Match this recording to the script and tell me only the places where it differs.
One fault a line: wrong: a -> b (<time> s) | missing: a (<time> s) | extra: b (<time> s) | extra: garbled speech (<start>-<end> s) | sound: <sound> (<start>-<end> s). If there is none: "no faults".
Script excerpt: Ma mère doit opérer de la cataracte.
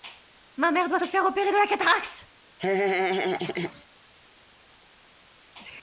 extra: se faire (0.9 s)
sound: laugh (2.6-3.9 s)